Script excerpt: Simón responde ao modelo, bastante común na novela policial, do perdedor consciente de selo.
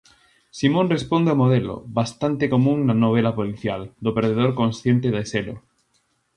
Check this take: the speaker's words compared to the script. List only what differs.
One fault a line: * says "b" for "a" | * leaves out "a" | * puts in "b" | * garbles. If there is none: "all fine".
all fine